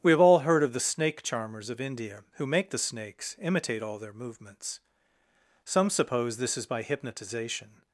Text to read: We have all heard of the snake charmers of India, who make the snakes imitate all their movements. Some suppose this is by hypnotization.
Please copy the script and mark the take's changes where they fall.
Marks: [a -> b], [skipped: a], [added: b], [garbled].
We have all heard of the snake charmers of India, who make the snakes imitate all their movements. Some suppose this is by hypnotization.